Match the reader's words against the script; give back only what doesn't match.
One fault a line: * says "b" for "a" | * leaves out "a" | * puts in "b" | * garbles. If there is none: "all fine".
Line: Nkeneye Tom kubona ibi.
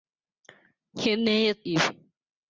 * leaves out "Tom kubona"